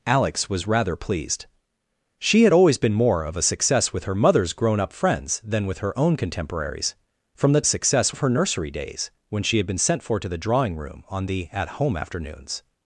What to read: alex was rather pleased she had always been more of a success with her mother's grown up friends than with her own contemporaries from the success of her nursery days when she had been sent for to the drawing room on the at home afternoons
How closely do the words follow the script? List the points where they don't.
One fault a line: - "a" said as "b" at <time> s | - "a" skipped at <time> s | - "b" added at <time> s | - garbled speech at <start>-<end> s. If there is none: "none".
none